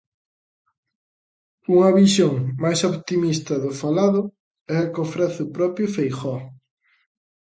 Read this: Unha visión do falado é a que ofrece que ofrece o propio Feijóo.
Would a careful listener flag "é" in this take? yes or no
no